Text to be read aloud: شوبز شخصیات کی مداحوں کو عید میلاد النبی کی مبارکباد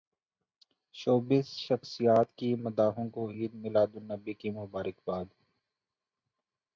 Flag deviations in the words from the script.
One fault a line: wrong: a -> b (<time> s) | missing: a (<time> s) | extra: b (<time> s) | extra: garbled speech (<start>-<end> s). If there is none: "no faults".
no faults